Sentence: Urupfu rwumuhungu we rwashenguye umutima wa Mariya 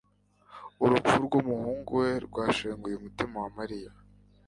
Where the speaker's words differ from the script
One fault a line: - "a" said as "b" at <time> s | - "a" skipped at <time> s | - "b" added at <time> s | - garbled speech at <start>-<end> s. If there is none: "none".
none